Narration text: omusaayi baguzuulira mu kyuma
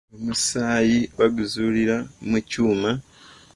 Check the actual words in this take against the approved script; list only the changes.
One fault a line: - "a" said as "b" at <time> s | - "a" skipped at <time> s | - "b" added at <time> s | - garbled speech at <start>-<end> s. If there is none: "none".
none